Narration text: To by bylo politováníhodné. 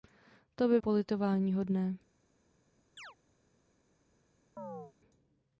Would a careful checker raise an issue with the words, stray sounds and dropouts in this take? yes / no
yes